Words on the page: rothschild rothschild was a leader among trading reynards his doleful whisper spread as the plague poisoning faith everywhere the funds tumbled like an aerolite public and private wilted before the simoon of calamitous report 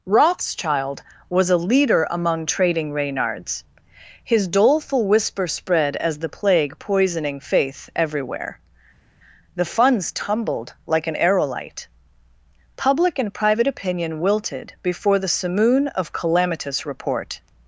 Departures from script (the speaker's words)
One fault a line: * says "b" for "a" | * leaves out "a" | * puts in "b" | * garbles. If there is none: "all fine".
* leaves out "rothschild"
* puts in "opinion"